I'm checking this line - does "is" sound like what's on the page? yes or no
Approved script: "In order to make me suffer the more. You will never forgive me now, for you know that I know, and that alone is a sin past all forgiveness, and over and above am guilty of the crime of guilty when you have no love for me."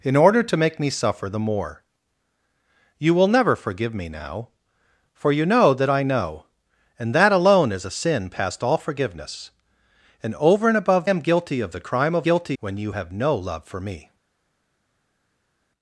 yes